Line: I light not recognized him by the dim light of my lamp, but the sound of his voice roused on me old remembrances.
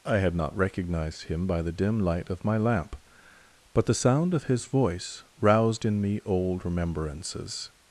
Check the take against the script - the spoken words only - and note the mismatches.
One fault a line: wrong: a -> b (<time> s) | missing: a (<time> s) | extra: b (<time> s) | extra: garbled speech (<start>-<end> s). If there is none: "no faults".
wrong: light -> had (0.2 s)
wrong: on -> in (5.8 s)